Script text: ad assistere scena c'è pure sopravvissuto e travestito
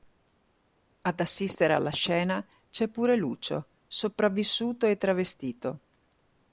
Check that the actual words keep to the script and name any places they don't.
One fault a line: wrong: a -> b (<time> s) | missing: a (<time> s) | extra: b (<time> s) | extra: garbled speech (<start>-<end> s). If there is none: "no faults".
extra: alla (1.7 s)
extra: lucio (3.1 s)